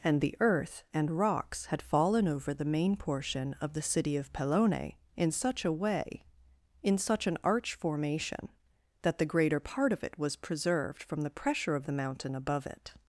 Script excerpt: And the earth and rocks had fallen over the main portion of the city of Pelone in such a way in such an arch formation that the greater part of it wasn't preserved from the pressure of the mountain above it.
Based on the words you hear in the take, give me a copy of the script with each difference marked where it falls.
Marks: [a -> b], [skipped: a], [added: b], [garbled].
And the earth and rocks had fallen over the main portion of the city of Pelone in such a way in such an arch formation that the greater part of it [wasn't -> was] preserved from the pressure of the mountain above it.